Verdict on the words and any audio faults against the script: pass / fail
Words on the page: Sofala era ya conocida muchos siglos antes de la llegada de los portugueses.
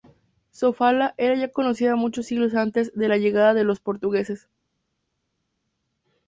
pass